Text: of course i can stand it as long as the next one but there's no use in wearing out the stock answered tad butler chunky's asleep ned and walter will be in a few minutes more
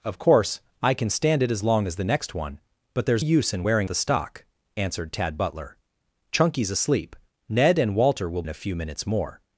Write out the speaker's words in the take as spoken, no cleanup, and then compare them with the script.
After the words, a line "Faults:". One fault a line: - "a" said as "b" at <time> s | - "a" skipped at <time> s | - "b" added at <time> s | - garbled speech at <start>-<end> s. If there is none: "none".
of course i can stand it as long as the next one but there's use in wearing the stock answered tad butler chunky's asleep ned and walter will in a few minutes more
Faults:
- "no" skipped at 3.2 s
- "out" skipped at 3.9 s
- "be" skipped at 8.4 s